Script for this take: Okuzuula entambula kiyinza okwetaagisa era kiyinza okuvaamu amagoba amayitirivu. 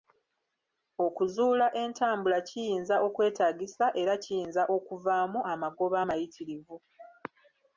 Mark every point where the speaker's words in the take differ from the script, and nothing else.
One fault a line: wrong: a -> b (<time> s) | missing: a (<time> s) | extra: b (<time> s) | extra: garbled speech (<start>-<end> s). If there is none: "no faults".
no faults